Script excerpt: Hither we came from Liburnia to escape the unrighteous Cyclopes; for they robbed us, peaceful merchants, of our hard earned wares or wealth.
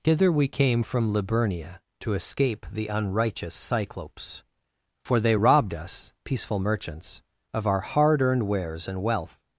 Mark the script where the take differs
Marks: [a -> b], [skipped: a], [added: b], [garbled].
Hither we came from Liburnia to escape the unrighteous Cyclopes; for they robbed us, peaceful merchants, of our hard earned wares [or -> and] wealth.